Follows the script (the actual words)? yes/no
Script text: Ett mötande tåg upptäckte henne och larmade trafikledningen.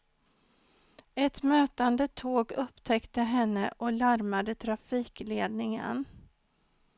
yes